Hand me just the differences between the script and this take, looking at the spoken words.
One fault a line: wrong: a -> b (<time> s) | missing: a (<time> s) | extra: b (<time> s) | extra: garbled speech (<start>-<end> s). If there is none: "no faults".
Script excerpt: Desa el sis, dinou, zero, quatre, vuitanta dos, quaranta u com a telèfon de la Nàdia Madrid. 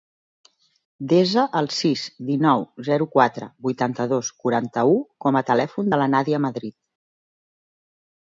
no faults